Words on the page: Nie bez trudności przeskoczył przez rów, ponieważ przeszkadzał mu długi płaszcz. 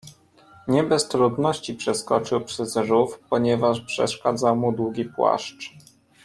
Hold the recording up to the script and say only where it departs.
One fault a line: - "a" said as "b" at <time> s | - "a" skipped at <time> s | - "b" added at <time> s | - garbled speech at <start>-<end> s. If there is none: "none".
none